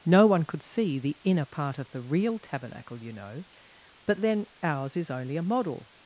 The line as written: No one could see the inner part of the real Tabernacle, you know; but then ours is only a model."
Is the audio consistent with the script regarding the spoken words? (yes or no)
yes